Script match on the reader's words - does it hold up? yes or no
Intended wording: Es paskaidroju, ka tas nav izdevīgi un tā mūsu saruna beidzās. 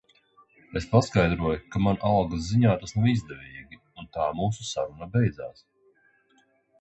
no